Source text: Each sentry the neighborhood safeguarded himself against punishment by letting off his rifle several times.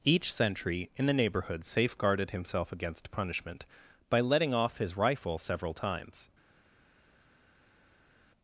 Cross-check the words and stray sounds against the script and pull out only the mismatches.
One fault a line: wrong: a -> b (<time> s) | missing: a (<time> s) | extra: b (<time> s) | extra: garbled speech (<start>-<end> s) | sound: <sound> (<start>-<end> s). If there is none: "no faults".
extra: in (1.0 s)